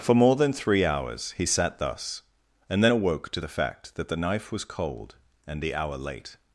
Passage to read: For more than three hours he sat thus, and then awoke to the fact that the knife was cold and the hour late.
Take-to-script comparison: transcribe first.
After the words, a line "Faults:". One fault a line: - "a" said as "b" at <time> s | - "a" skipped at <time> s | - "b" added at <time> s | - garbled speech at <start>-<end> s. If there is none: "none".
For more than three hours he sat thus, and then awoke to the fact that the knife was cold and the hour late.
Faults:
none